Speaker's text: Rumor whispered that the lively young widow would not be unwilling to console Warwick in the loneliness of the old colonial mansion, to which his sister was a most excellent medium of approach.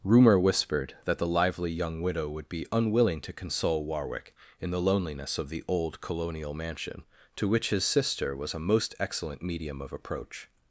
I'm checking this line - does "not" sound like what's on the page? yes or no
no